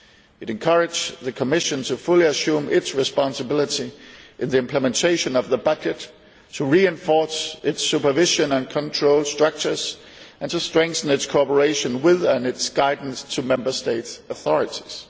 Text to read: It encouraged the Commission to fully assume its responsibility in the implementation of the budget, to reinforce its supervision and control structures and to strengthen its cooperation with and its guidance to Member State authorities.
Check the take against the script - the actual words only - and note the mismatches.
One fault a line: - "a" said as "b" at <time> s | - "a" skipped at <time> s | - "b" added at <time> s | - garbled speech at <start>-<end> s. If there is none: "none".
none